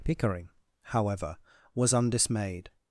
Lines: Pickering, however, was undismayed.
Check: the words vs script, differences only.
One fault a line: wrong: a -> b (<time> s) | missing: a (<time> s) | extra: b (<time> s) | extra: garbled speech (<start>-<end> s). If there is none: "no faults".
no faults